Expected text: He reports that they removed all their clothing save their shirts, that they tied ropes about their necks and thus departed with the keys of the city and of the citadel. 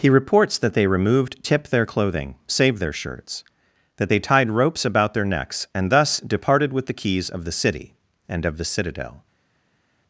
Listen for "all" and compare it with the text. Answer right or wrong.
wrong